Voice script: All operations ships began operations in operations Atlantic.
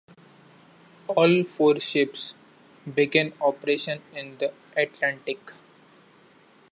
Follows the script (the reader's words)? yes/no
no